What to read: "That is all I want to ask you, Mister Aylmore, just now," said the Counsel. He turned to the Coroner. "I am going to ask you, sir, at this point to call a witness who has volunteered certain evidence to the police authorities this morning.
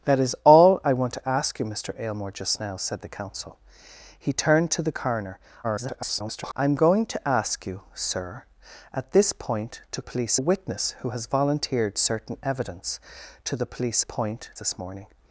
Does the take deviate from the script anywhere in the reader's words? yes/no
yes